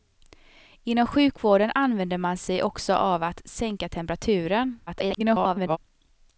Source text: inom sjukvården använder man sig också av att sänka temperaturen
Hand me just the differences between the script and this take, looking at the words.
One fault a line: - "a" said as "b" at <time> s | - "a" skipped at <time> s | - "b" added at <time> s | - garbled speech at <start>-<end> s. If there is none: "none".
- garbled speech at 4.9-5.8 s